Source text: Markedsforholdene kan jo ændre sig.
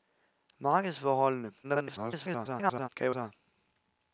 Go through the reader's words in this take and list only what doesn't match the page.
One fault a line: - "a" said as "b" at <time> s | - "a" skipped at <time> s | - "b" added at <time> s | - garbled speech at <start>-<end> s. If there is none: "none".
- garbled speech at 1.6-2.9 s
- "ændre" skipped at 3.2 s